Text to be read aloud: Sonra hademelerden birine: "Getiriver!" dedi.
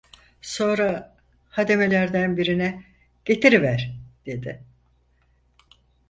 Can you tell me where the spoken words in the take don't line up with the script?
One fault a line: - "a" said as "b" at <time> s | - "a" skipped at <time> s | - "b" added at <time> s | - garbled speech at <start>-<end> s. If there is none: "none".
none